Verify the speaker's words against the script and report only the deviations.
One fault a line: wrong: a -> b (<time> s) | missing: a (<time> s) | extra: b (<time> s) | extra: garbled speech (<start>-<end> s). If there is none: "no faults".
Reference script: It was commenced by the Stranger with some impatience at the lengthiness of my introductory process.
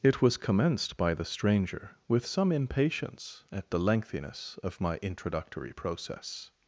no faults